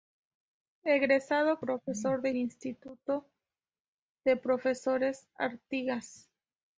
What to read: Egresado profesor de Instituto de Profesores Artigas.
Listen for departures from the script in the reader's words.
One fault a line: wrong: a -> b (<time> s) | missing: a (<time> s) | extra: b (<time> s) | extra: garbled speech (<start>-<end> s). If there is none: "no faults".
no faults